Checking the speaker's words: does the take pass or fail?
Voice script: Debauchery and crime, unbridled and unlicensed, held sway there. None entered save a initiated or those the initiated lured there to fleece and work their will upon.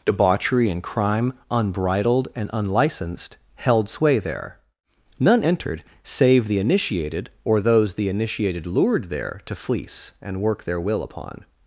fail